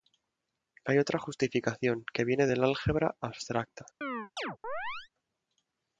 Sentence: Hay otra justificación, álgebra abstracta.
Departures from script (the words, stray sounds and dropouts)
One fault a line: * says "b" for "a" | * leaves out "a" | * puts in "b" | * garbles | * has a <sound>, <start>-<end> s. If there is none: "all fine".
* puts in "que viene del"
* has a chirp, 4.0-5.1 s